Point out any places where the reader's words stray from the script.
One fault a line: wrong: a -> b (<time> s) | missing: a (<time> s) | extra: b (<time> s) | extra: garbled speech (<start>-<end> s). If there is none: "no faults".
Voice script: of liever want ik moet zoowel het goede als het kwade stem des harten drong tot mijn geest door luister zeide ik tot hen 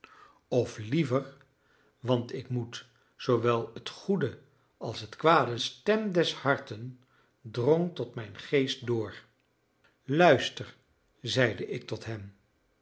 no faults